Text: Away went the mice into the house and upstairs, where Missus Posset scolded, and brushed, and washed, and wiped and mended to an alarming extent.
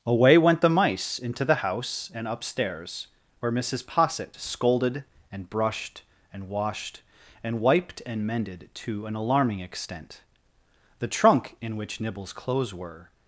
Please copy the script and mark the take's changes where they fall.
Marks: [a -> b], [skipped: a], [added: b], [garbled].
Away went the mice into the house and upstairs, where Missus Posset scolded, and brushed, and washed, and wiped and mended to an alarming extent. [added: The trunk in which Nibble's clothes were]